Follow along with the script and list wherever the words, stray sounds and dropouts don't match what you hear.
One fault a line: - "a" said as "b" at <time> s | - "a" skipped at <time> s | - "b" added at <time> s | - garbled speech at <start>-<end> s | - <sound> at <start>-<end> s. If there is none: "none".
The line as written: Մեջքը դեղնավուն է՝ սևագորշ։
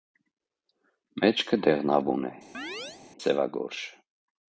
- chirp at 2.5-3.0 s